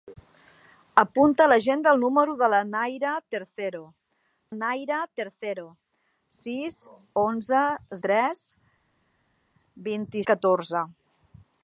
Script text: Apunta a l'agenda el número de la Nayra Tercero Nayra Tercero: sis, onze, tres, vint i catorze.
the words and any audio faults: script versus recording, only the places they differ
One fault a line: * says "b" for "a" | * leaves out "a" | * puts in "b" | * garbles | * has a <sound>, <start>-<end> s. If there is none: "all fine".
all fine